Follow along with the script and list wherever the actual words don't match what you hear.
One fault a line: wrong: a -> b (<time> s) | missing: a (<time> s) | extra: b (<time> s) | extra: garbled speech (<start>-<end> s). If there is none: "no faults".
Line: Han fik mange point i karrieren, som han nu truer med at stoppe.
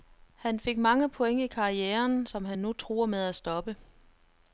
no faults